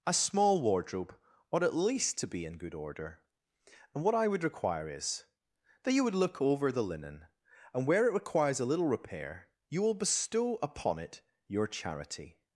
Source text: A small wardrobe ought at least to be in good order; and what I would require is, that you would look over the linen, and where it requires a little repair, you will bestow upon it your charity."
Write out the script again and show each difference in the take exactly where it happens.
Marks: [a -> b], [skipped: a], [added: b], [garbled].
A small wardrobe ought at least to be in good order; and what I would require is, that you would look over the linen, and where it requires a little repair, you will bestow upon it your charity."